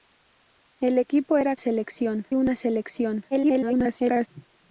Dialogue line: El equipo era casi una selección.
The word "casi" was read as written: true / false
false